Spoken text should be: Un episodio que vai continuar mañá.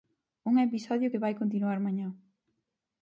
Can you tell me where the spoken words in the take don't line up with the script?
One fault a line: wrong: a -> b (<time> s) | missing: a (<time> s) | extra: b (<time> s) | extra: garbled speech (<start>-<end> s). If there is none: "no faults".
no faults